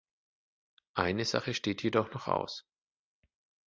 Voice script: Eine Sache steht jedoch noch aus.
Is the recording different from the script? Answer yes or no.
no